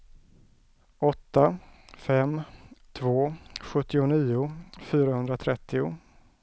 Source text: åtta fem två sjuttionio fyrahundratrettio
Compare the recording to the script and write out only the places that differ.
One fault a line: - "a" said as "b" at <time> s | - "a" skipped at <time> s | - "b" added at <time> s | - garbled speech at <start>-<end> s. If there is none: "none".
none